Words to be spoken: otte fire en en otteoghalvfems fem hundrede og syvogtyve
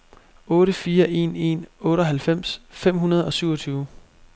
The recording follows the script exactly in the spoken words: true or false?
true